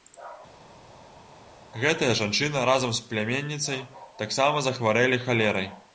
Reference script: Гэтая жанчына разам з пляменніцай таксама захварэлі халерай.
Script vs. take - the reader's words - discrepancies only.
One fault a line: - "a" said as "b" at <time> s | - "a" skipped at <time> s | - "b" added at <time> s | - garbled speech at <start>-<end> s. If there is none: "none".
none